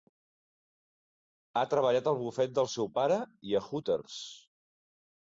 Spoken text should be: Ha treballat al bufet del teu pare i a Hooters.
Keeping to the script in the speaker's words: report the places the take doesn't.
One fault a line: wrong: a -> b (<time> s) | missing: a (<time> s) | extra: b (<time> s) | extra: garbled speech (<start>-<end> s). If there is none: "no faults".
wrong: teu -> seu (2.8 s)